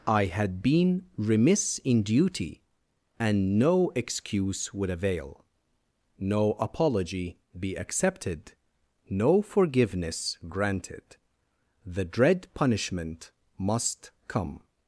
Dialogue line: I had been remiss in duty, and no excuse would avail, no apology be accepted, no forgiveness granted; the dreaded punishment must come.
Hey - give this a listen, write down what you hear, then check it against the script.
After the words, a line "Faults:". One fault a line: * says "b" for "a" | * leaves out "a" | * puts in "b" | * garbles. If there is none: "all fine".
I had been remiss in duty, and no excuse would avail, no apology be accepted, no forgiveness granted; the dread punishment must come.
Faults:
* says "dread" for "dreaded"